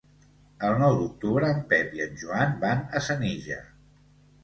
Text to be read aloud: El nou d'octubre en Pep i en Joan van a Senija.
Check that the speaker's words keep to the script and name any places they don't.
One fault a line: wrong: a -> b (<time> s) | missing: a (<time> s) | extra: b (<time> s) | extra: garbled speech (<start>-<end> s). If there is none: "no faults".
no faults